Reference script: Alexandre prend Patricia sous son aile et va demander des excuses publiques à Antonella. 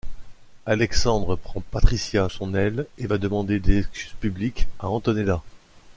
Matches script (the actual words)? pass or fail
fail